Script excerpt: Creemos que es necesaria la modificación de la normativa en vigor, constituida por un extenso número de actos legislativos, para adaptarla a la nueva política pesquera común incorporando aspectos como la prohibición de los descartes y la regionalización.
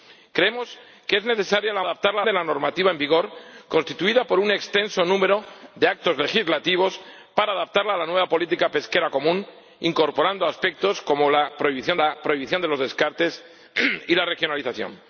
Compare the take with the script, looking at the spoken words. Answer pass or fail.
fail